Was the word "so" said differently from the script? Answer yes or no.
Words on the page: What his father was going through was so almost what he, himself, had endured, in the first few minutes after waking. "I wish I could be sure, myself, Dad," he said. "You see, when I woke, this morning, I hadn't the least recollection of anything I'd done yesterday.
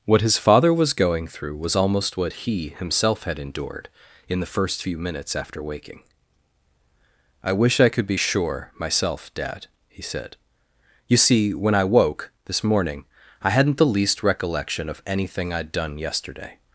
yes